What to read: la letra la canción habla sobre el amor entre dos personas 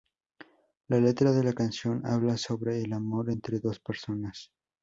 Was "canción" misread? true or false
false